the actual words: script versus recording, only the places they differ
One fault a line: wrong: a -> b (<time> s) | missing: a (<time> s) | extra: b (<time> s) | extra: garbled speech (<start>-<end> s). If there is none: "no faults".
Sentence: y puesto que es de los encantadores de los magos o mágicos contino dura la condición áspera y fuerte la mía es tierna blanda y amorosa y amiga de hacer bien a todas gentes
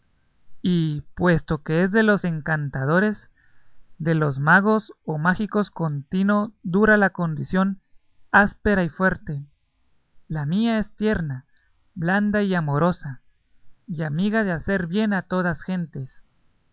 no faults